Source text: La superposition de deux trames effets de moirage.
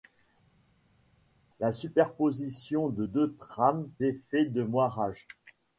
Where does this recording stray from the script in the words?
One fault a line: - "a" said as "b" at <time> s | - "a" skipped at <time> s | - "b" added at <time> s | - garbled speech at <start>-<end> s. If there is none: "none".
none